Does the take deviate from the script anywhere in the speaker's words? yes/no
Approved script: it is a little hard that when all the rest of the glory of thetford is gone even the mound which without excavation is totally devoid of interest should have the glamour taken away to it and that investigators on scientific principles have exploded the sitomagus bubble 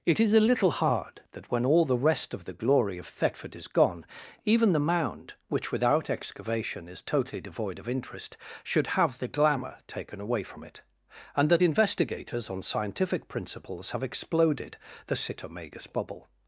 yes